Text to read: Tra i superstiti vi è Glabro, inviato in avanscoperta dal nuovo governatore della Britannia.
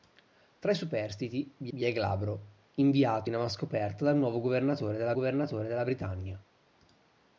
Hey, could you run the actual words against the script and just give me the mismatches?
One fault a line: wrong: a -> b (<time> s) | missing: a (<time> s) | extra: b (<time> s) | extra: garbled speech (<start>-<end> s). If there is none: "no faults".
extra: vi (1.7 s)
extra: governatore della (5.1 s)